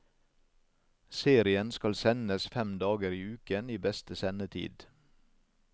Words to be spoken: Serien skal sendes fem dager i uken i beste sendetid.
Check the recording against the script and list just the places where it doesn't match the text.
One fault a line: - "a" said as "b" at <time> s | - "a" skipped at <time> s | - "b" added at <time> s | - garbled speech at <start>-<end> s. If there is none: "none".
none